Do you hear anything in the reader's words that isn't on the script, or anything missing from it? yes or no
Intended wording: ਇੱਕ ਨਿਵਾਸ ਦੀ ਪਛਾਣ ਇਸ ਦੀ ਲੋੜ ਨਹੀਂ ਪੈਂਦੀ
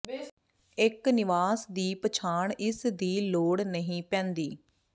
no